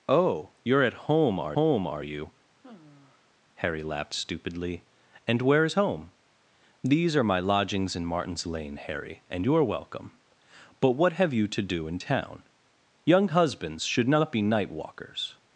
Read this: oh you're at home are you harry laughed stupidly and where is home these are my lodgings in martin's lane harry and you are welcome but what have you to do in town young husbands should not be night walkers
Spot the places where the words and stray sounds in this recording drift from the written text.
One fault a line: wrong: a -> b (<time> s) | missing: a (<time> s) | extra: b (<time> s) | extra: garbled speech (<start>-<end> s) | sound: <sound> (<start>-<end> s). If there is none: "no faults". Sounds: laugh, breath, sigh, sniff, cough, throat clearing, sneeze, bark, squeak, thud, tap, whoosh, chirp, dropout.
extra: home are (1.5 s)
sound: sigh (2.6-3.3 s)